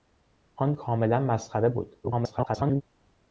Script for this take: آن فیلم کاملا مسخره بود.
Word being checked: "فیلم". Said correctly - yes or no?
no